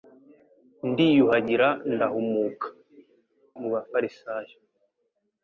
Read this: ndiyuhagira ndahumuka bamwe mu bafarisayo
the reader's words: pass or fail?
fail